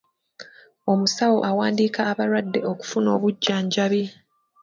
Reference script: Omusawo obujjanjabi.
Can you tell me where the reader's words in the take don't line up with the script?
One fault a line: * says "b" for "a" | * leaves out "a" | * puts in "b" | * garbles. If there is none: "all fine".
* puts in "awandiika abalwadde okufuna"